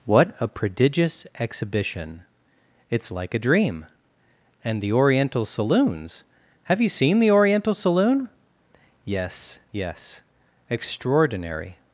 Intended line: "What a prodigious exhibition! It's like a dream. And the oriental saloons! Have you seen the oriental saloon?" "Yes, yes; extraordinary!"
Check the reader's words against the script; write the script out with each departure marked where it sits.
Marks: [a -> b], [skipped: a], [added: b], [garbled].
"What a prodigious exhibition! It's like a dream. And the oriental saloons! Have you seen the oriental saloon?" "Yes, yes; extraordinary!"